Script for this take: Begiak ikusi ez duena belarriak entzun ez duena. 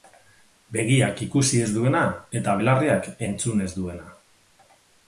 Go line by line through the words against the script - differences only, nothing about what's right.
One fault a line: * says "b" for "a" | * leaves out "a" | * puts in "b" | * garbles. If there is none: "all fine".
* puts in "eta"